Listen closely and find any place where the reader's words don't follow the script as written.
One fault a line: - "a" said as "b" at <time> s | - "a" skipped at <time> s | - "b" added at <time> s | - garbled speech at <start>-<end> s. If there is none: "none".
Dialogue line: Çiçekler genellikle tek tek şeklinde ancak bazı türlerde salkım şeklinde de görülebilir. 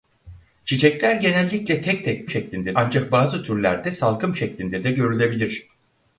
none